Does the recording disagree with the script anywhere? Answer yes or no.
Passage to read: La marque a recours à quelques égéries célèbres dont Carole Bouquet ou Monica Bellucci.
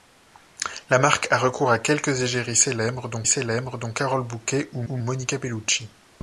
yes